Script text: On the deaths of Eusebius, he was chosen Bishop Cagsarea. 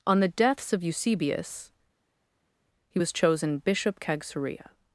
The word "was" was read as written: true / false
true